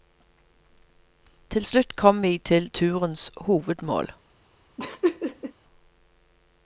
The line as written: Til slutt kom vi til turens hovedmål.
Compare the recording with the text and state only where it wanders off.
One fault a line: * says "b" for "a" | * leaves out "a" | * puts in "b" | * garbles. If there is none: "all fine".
all fine